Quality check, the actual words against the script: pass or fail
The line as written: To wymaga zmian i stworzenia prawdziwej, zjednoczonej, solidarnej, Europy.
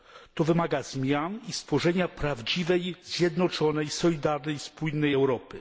fail